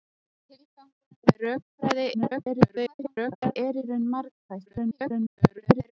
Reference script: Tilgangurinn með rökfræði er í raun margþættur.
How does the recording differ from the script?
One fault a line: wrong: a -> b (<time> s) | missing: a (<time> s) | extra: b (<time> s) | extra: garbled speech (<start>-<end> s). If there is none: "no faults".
extra: garbled speech (2.1-3.6 s)
extra: garbled speech (4.7-5.9 s)